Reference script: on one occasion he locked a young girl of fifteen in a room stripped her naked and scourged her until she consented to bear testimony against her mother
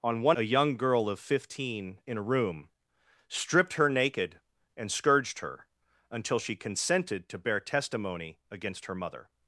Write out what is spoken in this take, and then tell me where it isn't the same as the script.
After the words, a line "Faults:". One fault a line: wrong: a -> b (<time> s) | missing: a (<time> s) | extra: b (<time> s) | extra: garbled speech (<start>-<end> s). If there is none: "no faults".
on one a young girl of fifteen in a room stripped her naked and scourged her until she consented to bear testimony against her mother
Faults:
missing: occasion he locked (0.4 s)